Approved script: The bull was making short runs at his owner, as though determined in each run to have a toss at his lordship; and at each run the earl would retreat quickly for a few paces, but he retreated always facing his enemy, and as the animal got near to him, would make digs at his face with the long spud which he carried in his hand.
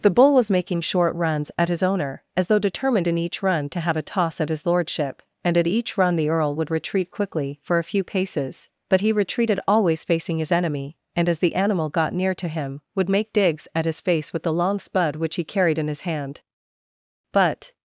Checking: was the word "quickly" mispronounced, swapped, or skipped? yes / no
no